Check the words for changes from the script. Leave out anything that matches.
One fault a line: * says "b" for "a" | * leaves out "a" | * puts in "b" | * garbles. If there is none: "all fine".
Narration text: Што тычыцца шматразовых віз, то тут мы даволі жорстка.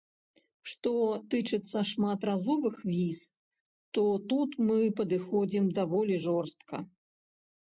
* puts in "падыходзім"